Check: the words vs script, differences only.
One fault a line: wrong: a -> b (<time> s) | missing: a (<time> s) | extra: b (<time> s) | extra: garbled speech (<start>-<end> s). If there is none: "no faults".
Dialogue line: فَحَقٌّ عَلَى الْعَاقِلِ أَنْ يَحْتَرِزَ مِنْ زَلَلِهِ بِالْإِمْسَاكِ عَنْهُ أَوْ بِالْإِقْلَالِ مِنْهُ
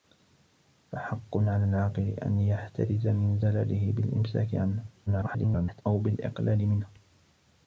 extra: garbled speech (5.1-5.8 s)